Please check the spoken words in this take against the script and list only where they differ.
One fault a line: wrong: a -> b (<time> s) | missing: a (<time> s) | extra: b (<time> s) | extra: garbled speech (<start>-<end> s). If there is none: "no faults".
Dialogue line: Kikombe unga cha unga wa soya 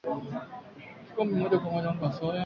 wrong: unga -> moja (1.4 s)